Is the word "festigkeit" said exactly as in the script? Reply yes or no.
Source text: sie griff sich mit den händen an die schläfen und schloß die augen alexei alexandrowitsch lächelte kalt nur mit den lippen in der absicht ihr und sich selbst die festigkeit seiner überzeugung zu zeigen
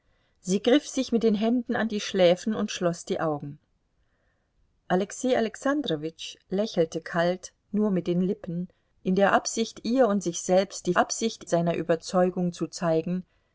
no